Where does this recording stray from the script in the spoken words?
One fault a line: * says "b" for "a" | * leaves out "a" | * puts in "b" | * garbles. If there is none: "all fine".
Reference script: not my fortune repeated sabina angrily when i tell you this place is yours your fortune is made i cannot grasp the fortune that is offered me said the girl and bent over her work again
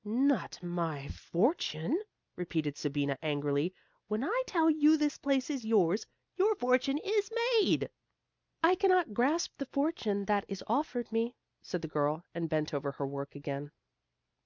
all fine